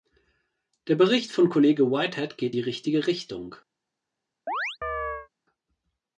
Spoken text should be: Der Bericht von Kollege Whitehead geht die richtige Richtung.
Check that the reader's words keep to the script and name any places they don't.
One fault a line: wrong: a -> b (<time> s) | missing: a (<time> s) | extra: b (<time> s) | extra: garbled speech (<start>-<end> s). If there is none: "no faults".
no faults